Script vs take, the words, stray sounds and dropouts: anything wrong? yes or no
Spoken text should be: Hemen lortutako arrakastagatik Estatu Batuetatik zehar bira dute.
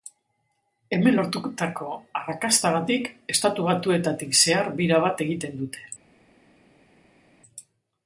yes